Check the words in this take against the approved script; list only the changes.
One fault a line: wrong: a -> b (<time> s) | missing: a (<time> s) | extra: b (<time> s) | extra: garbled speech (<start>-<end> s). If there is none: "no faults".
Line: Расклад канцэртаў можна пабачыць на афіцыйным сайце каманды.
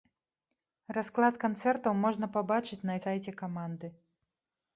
missing: афіцыйным (3.0 s)